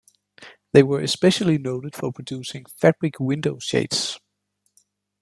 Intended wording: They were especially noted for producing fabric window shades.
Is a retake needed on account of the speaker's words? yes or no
no